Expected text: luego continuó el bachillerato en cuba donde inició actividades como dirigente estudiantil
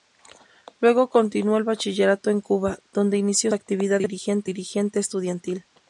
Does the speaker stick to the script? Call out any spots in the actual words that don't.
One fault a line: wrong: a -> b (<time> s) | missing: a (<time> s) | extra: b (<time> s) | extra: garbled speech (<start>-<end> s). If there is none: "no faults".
no faults